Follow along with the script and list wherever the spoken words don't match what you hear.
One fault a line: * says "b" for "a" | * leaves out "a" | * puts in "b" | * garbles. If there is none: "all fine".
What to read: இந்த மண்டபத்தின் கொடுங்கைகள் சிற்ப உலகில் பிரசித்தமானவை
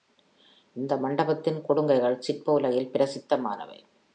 all fine